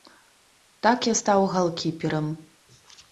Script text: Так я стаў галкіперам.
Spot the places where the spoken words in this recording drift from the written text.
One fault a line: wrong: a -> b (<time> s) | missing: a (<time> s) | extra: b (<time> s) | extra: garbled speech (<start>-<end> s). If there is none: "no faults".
no faults